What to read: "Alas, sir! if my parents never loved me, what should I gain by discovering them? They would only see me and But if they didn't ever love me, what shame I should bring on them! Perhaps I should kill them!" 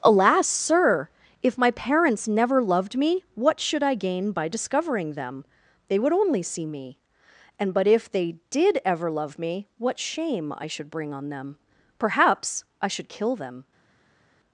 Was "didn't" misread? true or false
true